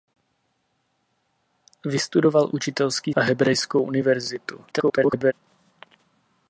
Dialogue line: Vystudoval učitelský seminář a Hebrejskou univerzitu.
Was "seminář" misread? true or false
true